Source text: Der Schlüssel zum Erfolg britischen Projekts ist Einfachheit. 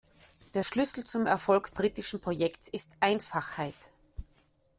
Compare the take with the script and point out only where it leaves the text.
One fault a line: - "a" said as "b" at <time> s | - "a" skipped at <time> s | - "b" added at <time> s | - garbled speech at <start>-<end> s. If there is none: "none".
none